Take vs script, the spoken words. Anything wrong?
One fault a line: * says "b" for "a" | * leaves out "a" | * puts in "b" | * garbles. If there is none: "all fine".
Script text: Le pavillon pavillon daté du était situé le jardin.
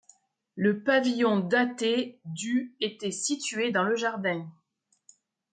* leaves out "pavillon"
* puts in "dans"